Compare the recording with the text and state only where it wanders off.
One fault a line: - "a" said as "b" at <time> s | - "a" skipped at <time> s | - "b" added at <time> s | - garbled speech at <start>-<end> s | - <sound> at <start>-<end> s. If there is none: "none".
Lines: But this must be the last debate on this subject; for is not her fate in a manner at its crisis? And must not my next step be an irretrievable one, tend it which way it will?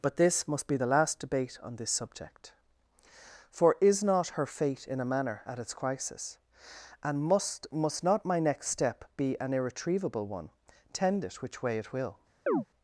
- "must" added at 7.7 s
- chirp at 12.5-12.6 s